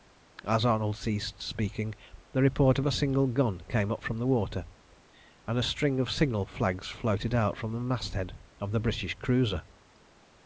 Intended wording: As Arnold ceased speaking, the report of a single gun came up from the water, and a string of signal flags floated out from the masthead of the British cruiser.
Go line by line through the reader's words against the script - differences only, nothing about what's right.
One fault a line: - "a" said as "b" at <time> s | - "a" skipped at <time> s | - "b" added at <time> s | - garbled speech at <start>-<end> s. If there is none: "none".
none